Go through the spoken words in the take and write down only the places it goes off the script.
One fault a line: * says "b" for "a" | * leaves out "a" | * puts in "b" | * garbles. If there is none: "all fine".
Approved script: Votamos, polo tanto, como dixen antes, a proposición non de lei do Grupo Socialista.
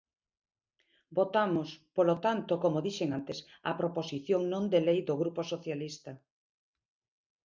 all fine